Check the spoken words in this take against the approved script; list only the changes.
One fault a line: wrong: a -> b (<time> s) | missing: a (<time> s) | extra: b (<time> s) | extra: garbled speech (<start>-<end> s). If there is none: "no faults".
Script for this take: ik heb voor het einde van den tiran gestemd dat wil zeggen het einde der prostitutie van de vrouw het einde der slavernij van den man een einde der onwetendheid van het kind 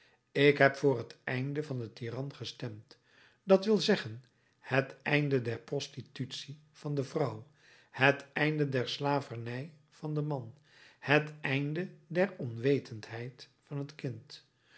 wrong: een -> het (11.0 s)